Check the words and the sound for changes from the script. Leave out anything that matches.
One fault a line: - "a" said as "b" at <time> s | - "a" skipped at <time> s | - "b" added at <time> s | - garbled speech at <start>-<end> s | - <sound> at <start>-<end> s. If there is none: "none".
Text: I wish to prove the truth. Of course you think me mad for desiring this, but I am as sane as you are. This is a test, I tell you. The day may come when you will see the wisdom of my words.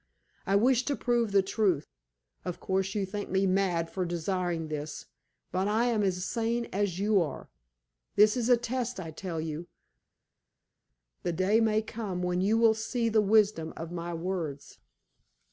none